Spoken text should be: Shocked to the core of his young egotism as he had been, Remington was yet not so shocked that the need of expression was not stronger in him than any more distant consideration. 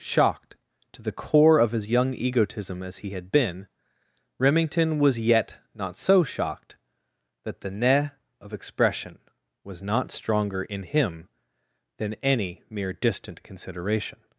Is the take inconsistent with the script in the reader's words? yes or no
yes